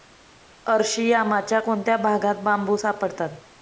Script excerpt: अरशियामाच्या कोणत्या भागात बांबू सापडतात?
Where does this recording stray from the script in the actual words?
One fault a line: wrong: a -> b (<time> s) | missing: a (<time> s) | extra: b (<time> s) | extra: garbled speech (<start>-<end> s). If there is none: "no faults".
no faults